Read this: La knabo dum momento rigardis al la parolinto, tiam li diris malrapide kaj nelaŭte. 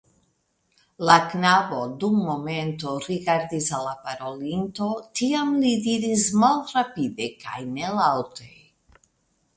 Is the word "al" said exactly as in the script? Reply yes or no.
yes